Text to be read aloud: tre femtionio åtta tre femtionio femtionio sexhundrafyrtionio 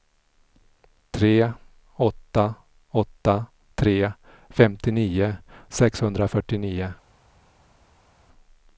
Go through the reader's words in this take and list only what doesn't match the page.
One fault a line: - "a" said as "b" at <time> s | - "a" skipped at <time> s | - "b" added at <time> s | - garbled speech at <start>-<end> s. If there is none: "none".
- "femtionio" said as "åtta" at 2.0 s
- "femtionio" skipped at 5.4 s